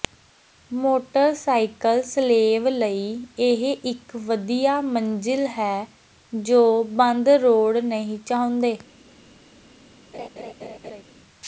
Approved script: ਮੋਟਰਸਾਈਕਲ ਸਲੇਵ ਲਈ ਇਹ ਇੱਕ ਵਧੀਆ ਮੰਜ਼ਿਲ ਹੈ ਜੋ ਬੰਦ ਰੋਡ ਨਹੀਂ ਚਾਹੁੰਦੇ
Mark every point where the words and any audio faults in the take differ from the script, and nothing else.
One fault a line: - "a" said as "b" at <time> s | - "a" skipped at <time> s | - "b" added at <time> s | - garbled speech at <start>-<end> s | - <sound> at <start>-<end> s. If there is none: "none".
- laugh at 10.1-11.0 s